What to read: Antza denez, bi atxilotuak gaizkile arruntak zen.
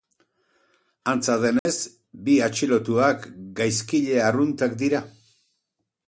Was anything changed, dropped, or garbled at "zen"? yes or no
yes